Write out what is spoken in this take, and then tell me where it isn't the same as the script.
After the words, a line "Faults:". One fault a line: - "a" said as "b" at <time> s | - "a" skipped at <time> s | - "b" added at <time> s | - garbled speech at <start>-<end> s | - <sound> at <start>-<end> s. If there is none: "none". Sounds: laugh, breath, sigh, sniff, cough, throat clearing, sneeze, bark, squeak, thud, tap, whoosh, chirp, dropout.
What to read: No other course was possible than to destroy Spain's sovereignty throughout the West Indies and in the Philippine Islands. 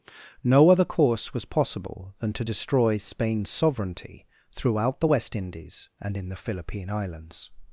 No other course was possible than to destroy Spain's sovereignty throughout the West Indies and in the Philippine Islands.
Faults:
none